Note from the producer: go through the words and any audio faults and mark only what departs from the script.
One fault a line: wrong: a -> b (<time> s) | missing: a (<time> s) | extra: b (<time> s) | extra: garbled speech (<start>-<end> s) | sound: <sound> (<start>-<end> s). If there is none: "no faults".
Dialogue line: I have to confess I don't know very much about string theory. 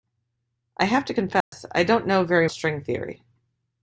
sound: dropout (1.4-1.5 s)
missing: much about (2.5 s)